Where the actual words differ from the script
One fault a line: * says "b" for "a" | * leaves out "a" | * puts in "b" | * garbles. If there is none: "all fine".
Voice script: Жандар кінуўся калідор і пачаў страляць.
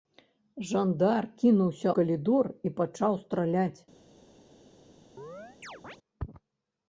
all fine